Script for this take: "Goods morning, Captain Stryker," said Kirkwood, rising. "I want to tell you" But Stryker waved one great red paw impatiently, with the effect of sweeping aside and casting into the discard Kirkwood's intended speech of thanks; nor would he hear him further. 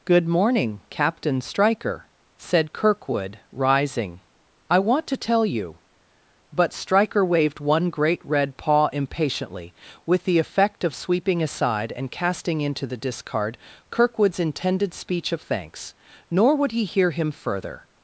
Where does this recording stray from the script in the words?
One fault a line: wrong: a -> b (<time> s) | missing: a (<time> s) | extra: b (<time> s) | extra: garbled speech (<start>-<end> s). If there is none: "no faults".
wrong: Goods -> Good (0.1 s)